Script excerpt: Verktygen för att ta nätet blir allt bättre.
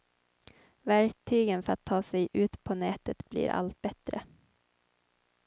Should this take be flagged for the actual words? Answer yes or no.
yes